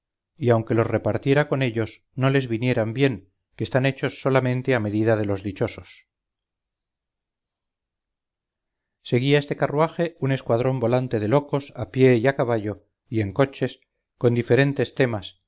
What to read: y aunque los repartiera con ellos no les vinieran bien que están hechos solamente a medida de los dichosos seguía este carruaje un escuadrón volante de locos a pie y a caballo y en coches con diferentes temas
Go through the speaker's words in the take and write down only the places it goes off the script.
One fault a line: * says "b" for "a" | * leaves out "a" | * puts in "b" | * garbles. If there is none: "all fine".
all fine